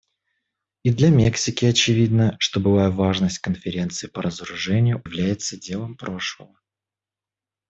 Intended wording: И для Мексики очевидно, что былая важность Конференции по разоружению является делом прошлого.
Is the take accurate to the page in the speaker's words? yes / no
yes